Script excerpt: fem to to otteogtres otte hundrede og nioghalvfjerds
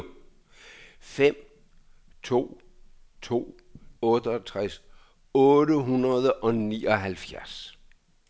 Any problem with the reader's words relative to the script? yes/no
no